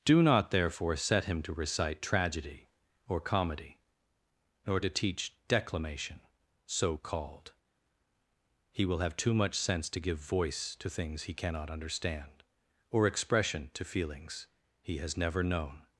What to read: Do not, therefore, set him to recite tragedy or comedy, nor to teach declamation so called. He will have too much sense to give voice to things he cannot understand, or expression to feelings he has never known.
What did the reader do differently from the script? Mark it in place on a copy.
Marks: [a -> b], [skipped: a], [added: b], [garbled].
Do not, therefore, set him to recite tragedy or comedy, nor to teach declamation so called. He will have too much sense to give voice to things he cannot understand, or expression to feelings he has never known.